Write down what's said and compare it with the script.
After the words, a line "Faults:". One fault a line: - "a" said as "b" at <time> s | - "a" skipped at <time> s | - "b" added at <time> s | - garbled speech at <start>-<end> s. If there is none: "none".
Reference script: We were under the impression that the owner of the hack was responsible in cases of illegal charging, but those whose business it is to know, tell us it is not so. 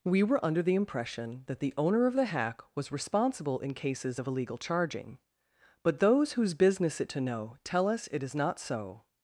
We were under the impression that the owner of the hack was responsible in cases of illegal charging, but those whose business it to know, tell us it is not so.
Faults:
- "is" skipped at 7.1 s